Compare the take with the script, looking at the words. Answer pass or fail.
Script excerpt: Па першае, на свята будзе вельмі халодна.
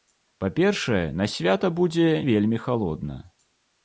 pass